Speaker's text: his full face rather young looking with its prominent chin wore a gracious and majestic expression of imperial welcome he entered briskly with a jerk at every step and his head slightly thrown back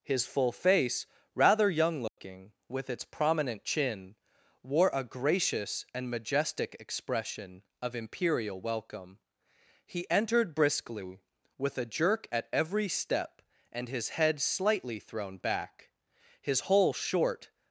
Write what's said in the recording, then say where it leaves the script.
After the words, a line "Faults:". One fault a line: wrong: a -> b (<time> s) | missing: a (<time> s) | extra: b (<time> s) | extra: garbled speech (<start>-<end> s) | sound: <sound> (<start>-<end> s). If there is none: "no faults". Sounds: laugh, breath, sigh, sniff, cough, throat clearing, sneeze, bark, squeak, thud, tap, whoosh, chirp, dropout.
his full face rather young looking with its prominent chin wore a gracious and majestic expression of imperial welcome he entered briskly with a jerk at every step and his head slightly thrown back his whole short
Faults:
sound: dropout (2.1-2.2 s)
extra: his whole short (16.4 s)